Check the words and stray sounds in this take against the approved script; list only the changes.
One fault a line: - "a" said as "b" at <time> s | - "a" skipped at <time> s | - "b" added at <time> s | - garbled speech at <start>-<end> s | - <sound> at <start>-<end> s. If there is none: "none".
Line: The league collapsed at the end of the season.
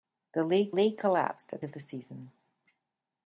- "league" added at 0.7 s
- "the end" skipped at 1.6 s